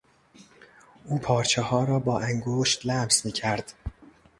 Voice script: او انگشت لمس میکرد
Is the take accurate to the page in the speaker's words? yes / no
no